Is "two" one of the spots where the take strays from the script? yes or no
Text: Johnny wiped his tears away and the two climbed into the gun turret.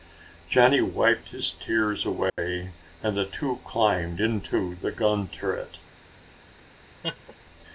no